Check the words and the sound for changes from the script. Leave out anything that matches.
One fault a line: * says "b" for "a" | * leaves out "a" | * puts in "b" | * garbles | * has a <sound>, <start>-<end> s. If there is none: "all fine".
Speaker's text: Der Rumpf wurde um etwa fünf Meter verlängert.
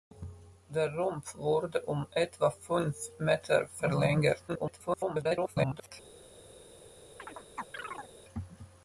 * garbles
* has a chirp, 7.2-8.1 s